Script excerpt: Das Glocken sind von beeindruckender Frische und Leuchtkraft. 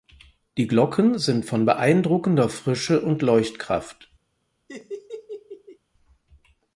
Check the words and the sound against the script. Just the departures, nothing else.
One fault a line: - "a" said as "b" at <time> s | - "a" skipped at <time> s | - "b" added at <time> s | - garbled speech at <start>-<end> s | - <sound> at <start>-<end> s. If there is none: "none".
- "Das" said as "Die" at 0.6 s
- laugh at 4.7-5.8 s